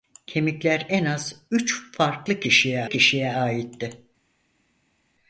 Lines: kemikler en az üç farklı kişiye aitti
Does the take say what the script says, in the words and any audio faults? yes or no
no